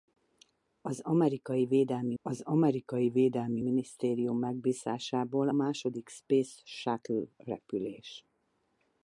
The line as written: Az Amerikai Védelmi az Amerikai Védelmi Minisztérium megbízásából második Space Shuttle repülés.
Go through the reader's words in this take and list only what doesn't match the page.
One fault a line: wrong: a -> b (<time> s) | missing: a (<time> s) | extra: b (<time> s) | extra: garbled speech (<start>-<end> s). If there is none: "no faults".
no faults